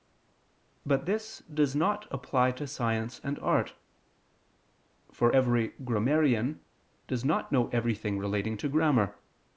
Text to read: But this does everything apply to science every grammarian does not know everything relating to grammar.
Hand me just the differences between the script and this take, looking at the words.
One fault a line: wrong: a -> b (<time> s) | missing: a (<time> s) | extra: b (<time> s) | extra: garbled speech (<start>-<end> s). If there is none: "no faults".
wrong: everything -> not (1.8 s)
extra: and art for (3.2 s)